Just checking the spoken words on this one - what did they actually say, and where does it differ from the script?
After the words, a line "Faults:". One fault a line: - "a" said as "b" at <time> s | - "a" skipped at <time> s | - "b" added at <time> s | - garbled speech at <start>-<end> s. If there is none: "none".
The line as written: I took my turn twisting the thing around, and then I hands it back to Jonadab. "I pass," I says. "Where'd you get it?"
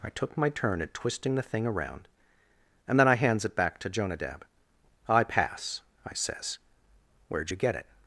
I took my turn at twisting the thing around, and then I hands it back to Jonadab. "I pass," I says. "Where'd you get it?"
Faults:
- "at" added at 0.8 s